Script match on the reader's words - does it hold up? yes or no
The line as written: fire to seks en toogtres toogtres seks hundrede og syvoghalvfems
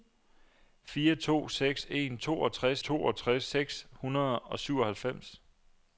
yes